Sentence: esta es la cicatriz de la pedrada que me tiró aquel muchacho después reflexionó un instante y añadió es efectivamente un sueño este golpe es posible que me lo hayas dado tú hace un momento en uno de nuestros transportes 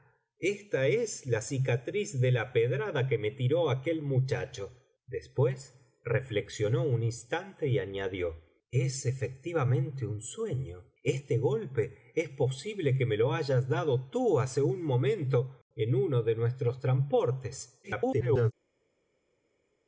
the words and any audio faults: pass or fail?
fail